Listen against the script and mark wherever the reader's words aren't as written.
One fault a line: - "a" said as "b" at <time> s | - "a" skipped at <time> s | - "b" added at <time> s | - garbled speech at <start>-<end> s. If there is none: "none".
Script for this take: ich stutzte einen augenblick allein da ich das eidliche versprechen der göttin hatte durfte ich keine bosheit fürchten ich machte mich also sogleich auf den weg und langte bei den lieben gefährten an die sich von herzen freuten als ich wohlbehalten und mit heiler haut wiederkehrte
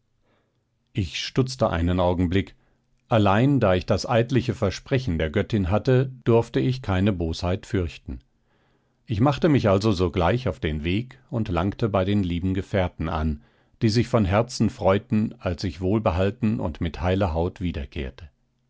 none